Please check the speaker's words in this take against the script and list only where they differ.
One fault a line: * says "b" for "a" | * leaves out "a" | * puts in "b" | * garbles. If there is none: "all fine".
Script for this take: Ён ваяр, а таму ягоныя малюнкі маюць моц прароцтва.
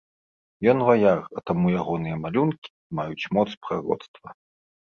all fine